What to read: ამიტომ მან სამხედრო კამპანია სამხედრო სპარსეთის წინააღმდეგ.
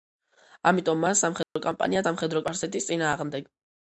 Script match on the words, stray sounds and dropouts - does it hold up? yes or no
no